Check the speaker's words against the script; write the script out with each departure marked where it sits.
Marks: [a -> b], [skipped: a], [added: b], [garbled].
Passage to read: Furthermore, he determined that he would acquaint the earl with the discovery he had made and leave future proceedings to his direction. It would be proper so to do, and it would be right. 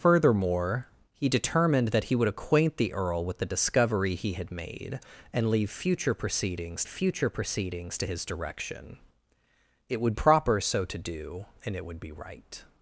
Furthermore, he determined that he would acquaint the earl with the discovery he had made and leave future proceedings [added: future proceedings] to his direction. It would [skipped: be] proper so to do, and it would be right.